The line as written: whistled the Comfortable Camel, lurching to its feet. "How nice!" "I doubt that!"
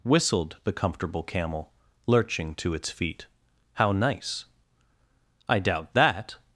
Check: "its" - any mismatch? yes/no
no